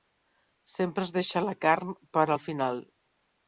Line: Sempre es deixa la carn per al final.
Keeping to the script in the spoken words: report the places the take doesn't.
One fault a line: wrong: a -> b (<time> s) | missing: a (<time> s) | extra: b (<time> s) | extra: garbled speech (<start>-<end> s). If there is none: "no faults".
no faults